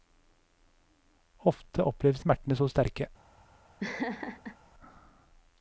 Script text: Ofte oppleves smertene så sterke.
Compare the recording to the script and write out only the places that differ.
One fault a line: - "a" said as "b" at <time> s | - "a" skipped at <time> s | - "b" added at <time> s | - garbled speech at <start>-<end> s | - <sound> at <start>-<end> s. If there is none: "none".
- laugh at 3.8-4.6 s